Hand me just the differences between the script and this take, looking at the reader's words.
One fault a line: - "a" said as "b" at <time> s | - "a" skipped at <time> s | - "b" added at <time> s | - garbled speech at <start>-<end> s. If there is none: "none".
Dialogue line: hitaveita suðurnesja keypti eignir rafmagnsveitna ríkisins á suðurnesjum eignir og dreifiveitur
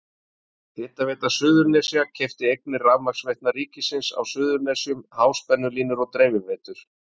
- "eignir" said as "háspennulínur" at 5.2 s